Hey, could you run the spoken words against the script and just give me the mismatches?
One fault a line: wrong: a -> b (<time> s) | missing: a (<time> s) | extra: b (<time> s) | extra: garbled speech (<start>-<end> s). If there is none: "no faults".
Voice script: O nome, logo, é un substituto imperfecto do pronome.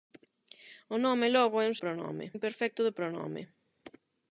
wrong: substituto -> pronome (1.8 s)